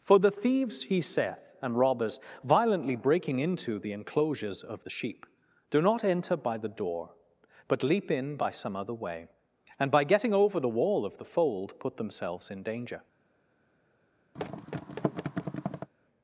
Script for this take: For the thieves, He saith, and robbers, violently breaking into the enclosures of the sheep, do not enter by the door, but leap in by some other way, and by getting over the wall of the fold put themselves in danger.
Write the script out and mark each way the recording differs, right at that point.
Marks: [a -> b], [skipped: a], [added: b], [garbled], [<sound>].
For the thieves, He saith, and robbers, violently breaking into the enclosures of the sheep, do not enter by the door, but leap in by some other way, and by getting over the wall of the fold put themselves in danger. [thud]